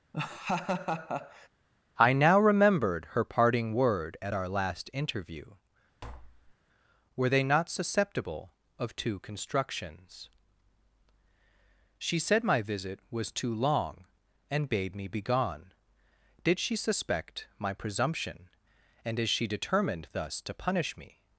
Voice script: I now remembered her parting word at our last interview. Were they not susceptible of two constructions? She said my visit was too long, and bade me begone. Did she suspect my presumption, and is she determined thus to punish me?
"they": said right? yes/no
yes